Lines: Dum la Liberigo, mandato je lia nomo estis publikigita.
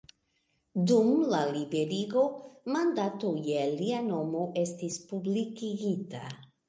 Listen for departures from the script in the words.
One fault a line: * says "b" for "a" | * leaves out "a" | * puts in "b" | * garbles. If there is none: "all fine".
all fine